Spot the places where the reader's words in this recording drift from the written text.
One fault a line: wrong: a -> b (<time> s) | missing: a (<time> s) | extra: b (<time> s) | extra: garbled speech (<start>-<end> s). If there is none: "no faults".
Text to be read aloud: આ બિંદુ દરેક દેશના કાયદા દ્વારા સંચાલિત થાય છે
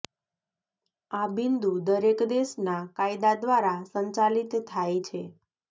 no faults